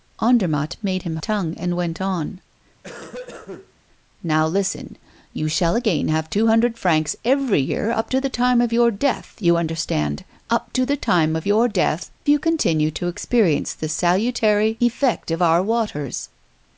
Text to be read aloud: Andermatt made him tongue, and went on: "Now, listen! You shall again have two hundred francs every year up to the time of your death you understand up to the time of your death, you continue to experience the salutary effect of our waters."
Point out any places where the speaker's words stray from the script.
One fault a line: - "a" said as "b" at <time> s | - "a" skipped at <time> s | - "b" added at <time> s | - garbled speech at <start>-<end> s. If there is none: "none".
none